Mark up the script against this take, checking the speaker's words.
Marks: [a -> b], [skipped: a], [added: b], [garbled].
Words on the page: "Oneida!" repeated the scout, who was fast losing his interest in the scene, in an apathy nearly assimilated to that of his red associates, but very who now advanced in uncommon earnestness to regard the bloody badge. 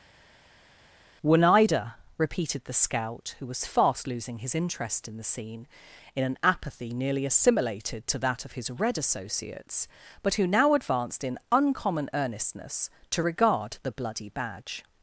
"Oneida!" repeated the scout, who was fast losing his interest in the scene, in an apathy nearly assimilated to that of his red associates, but [skipped: very] who now advanced in uncommon earnestness to regard the bloody badge.